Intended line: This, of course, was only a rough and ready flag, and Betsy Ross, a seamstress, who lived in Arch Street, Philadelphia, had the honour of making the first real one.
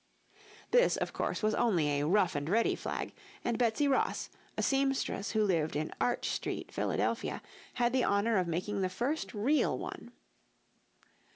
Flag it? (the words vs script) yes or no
no